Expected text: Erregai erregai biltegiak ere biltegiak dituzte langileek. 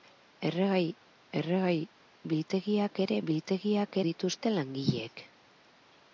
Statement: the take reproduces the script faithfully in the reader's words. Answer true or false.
true